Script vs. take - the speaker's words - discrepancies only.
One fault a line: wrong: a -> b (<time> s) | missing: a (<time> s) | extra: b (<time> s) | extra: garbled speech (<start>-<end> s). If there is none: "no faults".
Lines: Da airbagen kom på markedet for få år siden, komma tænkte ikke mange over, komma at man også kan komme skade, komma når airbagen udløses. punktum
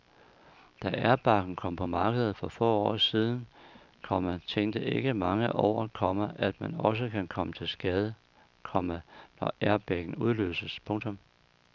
extra: til (7.5 s)